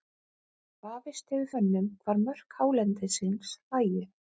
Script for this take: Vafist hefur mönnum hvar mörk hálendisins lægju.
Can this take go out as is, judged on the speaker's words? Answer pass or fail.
pass